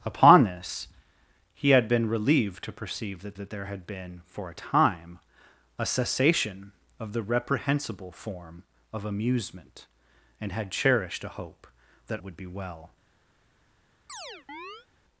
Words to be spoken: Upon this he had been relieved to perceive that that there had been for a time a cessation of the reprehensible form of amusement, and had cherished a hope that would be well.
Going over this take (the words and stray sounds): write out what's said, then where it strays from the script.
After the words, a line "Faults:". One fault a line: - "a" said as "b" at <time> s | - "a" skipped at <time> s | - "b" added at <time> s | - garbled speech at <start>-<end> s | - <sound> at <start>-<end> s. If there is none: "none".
Upon this he had been relieved to perceive that that there had been for a time a cessation of the reprehensible form of amusement, and had cherished a hope that would be well.
Faults:
- chirp at 14.1-14.9 s